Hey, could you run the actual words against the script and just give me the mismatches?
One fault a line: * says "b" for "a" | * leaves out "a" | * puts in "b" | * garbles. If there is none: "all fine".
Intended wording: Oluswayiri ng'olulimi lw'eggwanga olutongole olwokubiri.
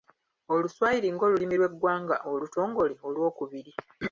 all fine